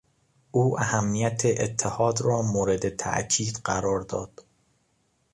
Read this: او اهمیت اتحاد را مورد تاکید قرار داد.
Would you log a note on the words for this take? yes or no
no